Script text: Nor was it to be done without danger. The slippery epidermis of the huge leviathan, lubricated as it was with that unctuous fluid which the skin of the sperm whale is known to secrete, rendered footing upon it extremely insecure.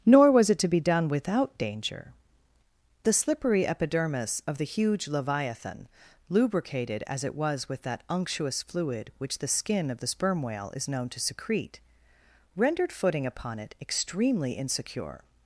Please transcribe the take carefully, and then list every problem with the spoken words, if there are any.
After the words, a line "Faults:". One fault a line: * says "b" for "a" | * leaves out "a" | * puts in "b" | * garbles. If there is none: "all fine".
Nor was it to be done without danger. The slippery epidermis of the huge leviathan, lubricated as it was with that unctuous fluid which the skin of the sperm whale is known to secrete, rendered footing upon it extremely insecure.
Faults:
all fine